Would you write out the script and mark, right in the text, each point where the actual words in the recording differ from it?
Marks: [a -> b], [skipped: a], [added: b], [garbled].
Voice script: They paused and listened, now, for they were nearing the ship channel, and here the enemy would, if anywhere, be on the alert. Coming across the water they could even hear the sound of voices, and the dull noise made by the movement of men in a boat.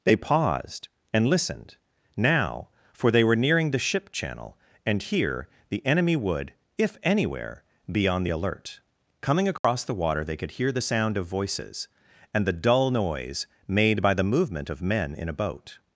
They paused and listened, now, for they were nearing the ship channel, and here the enemy would, if anywhere, be on the alert. Coming across the water they could [skipped: even] hear the sound of voices, and the dull noise made by the movement of men in a boat.